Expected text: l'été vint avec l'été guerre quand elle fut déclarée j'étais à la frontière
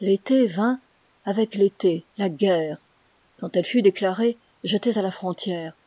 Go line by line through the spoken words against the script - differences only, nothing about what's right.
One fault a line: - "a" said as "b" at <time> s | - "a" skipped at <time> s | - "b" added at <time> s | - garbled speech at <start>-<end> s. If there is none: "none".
- "la" added at 2.2 s